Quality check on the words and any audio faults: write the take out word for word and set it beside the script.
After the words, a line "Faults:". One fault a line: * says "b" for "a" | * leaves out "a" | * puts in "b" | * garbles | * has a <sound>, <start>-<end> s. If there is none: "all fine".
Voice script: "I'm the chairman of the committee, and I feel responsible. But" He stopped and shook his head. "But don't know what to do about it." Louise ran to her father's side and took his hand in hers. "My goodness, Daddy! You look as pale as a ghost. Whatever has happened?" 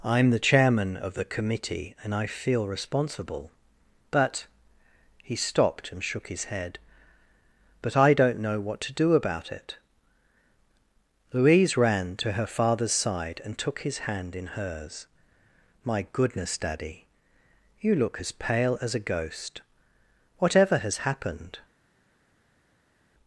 "I'm the chairman of the committee, and I feel responsible. But" He stopped and shook his head. "But I don't know what to do about it." Louise ran to her father's side and took his hand in hers. "My goodness, Daddy! You look as pale as a ghost. Whatever has happened?"
Faults:
* puts in "I"